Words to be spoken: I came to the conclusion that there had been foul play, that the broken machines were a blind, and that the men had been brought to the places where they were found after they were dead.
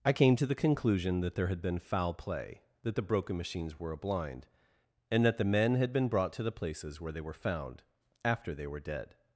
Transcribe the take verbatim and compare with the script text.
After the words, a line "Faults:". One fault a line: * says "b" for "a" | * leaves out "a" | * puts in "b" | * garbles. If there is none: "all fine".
I came to the conclusion that there had been foul play, that the broken machines were a blind, and that the men had been brought to the places where they were found after they were dead.
Faults:
all fine